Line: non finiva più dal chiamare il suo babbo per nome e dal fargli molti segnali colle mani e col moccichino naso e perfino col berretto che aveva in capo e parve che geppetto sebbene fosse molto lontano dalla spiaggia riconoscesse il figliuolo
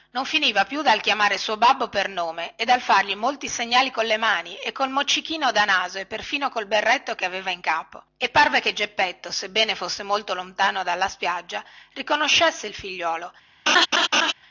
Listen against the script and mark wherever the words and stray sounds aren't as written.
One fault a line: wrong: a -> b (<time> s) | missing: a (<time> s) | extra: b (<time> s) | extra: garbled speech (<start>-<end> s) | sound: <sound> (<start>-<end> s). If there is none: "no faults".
extra: da (5.5 s)
sound: laugh (13.7-14.3 s)